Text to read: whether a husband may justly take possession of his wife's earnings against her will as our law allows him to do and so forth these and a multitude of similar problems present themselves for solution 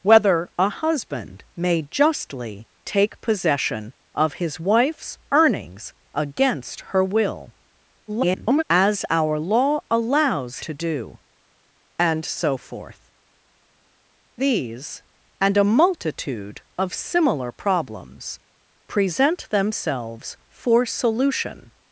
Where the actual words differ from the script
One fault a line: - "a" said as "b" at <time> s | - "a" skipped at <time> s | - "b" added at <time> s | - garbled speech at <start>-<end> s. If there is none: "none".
- garbled speech at 8.1-8.6 s
- "him" skipped at 10.6 s